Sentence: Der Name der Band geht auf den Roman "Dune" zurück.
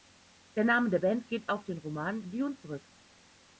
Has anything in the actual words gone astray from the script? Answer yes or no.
no